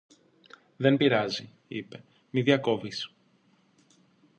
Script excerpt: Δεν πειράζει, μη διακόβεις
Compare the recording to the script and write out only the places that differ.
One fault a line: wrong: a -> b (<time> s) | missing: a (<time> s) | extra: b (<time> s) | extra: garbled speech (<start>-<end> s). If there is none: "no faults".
extra: είπε (1.7 s)